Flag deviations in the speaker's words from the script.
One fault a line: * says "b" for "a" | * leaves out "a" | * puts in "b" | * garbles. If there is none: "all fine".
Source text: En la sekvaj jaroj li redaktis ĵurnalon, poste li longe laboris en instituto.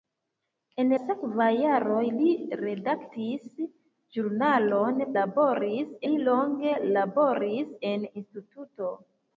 * leaves out "la"
* says "laboris" for "poste"